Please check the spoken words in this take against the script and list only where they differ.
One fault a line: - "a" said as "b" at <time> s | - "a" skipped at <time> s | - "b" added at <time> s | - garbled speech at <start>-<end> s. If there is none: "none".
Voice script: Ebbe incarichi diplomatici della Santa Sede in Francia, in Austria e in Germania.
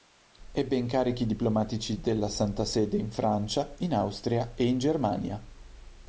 none